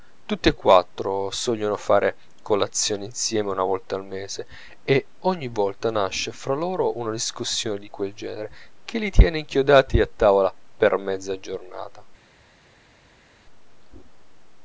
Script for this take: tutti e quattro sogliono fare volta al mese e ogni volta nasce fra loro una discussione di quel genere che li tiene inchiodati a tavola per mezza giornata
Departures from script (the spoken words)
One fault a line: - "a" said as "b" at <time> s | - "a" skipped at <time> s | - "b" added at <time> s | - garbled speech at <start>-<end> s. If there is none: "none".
- "colazione insieme una" added at 2.4 s